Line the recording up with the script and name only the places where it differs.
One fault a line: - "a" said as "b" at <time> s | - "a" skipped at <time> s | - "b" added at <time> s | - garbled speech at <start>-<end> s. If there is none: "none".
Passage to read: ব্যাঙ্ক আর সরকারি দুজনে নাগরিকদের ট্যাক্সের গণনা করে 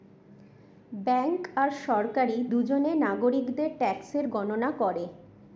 none